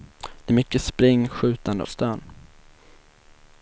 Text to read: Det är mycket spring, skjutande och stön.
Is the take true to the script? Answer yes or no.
no